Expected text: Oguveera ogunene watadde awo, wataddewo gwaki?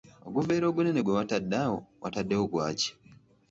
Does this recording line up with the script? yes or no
no